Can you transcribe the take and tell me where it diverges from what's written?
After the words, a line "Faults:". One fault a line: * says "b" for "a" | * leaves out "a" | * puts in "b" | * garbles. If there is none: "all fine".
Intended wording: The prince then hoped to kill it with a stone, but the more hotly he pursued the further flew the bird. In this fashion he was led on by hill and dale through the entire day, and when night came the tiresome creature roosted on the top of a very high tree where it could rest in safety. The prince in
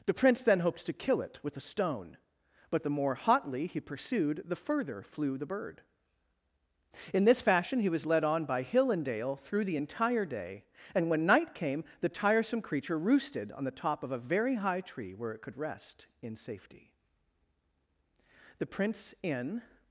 The prince then hoped to kill it with a stone, but the more hotly he pursued the further flew the bird. In this fashion he was led on by hill and dale through the entire day, and when night came the tiresome creature roosted on the top of a very high tree where it could rest in safety. The prince in
Faults:
all fine